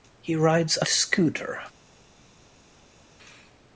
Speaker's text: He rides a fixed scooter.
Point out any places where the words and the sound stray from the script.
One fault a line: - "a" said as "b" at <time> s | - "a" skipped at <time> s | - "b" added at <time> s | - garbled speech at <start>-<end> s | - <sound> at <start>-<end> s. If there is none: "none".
- "fixed" skipped at 0.8 s